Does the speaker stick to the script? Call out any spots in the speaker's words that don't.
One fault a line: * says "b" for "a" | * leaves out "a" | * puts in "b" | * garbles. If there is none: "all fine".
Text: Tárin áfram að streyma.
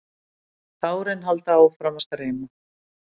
* puts in "halda"